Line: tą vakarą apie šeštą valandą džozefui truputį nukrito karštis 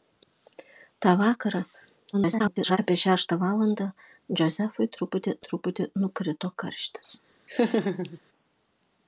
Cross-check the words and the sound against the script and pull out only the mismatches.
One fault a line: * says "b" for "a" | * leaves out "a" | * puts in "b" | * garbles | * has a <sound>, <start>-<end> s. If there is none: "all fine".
* garbles
* puts in "truputį"
* has a laugh, 7.5-8.2 s